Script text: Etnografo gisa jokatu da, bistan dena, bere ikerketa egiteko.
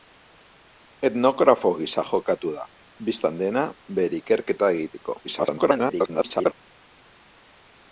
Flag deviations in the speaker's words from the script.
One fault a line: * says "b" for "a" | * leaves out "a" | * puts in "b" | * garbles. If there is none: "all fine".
* garbles